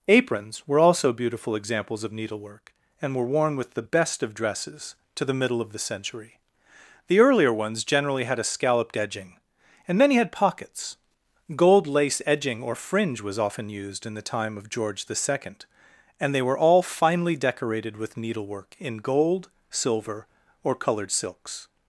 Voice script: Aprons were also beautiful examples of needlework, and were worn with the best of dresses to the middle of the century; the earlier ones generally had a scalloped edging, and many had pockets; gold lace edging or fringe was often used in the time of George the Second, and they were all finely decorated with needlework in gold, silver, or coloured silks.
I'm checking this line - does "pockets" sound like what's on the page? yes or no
yes